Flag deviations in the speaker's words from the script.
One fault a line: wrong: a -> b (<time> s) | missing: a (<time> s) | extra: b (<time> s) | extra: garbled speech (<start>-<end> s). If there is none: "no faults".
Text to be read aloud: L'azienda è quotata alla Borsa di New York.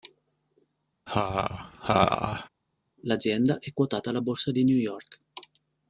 no faults